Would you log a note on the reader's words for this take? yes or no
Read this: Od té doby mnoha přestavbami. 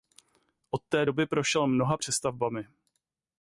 yes